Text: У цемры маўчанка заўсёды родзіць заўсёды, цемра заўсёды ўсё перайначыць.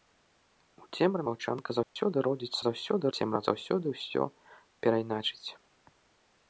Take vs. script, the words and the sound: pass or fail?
fail